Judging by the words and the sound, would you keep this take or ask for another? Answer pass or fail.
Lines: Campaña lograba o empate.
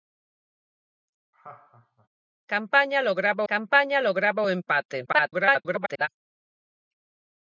fail